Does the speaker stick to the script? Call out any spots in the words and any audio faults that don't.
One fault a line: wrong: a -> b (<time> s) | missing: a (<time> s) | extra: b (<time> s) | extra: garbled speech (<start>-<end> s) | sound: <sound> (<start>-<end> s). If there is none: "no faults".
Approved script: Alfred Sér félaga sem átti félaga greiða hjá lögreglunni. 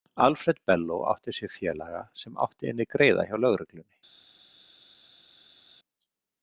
extra: Bello átti (0.6 s)
wrong: félaga -> inni (2.7 s)